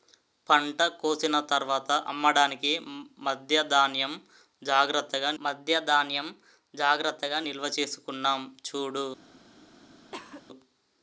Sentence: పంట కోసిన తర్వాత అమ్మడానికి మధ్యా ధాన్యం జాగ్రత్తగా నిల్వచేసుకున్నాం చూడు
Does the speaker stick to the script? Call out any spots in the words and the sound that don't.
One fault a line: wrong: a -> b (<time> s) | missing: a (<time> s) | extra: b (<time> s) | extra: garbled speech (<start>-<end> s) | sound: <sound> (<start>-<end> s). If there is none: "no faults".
extra: మధ్యా ధాన్యం జాగ్రత్తగా (5.4 s)
sound: cough (10.1-10.4 s)